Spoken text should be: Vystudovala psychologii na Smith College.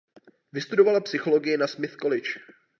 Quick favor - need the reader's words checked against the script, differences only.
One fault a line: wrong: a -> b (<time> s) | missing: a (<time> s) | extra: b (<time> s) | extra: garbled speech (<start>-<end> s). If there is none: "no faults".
no faults